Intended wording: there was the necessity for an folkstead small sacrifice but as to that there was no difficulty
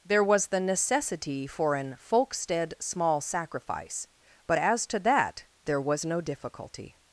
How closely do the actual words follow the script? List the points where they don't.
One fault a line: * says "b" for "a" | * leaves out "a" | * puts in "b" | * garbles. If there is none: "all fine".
all fine